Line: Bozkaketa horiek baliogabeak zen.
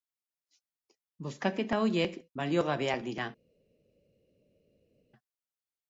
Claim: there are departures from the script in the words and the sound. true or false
true